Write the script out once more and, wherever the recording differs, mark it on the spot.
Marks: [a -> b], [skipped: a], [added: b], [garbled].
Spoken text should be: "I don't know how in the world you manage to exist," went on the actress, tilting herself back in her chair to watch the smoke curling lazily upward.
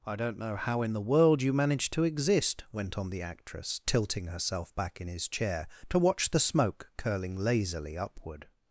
"I don't know how in the world you manage to exist," went on the actress, tilting herself back in [her -> his] chair to watch the smoke curling lazily upward.